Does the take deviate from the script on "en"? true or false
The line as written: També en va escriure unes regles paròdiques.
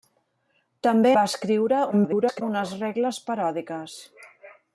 true